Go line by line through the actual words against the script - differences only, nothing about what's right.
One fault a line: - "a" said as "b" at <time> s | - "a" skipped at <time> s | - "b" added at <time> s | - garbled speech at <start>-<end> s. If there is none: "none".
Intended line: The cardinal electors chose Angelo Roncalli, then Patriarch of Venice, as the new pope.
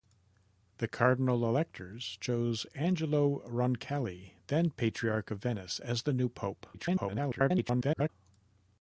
- garbled speech at 6.7-8.1 s